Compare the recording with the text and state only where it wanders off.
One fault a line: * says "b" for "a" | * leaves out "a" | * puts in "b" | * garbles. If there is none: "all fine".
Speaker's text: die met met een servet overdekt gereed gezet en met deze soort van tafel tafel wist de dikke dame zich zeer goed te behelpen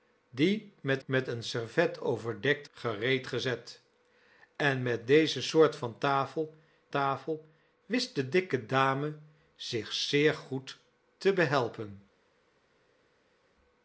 all fine